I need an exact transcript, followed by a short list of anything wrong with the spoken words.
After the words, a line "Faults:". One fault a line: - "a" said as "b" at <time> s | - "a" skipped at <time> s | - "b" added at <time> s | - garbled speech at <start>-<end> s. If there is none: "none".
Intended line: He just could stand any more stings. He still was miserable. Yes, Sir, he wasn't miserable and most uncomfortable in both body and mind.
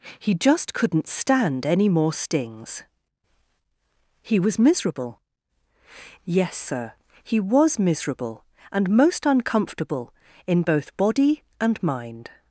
He just couldn't stand any more stings. He was miserable. Yes, Sir, he was miserable and most uncomfortable in both body and mind.
Faults:
- "could" said as "couldn't" at 0.7 s
- "still" skipped at 4.4 s
- "wasn't" said as "was" at 7.4 s